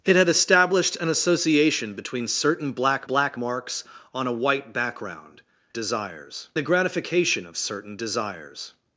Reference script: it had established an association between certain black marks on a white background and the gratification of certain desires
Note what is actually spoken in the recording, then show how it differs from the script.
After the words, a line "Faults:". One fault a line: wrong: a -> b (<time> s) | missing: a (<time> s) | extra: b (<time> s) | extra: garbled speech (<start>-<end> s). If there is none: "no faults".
it had established an association between certain black black marks on a white background desires the gratification of certain desires
Faults:
extra: black (3.0 s)
wrong: and -> desires (5.7 s)